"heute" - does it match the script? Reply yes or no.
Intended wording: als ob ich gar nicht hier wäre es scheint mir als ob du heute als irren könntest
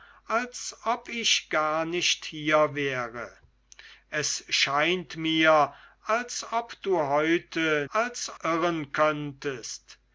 yes